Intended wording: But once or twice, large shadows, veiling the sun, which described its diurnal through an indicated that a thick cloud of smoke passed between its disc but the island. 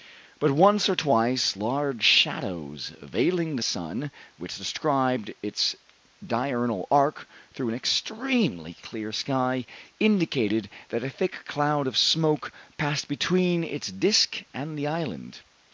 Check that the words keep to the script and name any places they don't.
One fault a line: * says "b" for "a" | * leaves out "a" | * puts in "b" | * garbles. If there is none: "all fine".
* puts in "arc"
* puts in "extremely clear sky"
* says "and" for "but"